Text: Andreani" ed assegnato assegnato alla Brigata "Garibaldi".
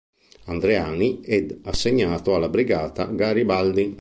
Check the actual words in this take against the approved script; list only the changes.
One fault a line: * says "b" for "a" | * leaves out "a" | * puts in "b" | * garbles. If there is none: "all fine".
* leaves out "assegnato"